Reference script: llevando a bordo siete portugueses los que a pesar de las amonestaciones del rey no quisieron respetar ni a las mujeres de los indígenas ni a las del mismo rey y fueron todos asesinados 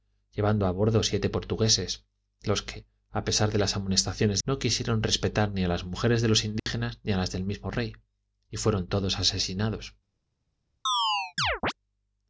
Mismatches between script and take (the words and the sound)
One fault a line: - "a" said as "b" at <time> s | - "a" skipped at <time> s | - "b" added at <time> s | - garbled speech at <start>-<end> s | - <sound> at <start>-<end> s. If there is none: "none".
- "del rey" skipped at 4.4 s
- dropout at 6.6-6.7 s
- chirp at 10.9-11.7 s